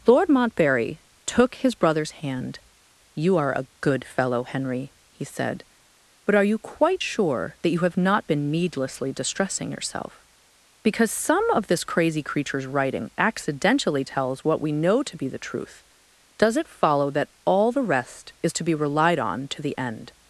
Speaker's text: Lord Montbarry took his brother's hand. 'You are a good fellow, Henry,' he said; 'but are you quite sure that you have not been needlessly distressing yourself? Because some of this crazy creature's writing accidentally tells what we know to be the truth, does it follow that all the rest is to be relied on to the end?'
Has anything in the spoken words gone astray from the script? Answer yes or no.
no